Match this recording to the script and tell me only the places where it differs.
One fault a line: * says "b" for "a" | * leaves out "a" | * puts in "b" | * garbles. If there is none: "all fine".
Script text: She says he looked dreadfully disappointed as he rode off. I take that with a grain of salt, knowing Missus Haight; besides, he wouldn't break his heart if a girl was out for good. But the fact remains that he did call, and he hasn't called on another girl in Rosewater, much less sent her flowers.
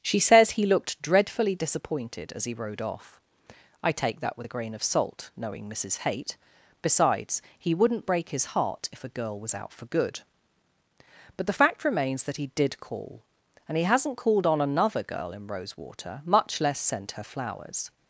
all fine